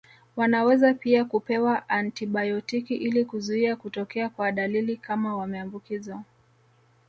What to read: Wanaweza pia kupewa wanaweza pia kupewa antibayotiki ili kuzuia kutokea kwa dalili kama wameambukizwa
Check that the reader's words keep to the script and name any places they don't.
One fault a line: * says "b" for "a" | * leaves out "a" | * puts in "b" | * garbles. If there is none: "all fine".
* leaves out "wanaweza pia kupewa"